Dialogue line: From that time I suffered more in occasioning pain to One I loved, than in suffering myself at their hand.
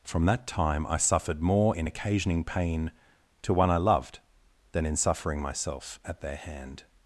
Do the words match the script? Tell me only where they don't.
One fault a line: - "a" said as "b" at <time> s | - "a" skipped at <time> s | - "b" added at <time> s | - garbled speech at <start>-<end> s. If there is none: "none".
none